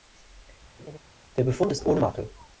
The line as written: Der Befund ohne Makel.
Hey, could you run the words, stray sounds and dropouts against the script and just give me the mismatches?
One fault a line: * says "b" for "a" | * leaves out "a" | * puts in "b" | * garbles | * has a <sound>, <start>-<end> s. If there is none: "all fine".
* has a laugh, 0.8-1.0 s
* puts in "ist"